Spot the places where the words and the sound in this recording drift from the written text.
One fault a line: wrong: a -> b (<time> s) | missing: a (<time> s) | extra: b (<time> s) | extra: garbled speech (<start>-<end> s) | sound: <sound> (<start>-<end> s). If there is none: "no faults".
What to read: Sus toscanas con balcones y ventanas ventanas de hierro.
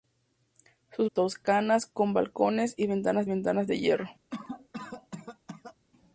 sound: cough (4.3-5.8 s)